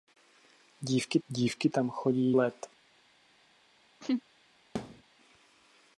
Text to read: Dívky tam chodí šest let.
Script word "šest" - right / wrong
wrong